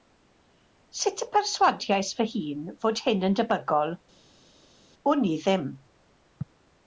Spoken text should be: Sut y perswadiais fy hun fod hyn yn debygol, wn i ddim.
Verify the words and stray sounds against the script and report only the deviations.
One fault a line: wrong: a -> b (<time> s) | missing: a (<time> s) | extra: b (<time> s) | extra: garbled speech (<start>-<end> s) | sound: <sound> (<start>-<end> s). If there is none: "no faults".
no faults